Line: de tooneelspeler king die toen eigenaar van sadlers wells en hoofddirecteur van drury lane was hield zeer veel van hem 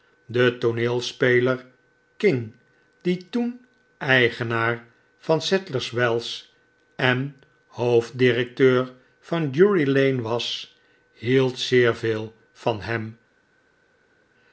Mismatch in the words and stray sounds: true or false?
false